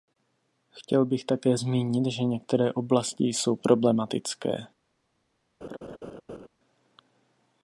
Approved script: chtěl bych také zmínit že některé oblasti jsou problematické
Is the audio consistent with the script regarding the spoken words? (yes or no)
yes